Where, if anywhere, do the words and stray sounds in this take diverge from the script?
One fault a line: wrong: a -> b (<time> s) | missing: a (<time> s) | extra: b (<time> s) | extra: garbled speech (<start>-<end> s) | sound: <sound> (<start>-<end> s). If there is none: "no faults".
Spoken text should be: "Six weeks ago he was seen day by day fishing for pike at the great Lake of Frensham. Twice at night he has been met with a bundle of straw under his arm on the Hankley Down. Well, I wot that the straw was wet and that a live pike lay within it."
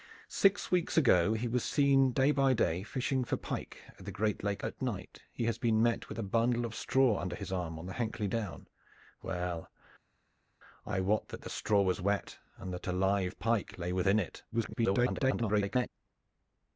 missing: of Frensham Twice (4.6 s)
extra: garbled speech (14.5-15.9 s)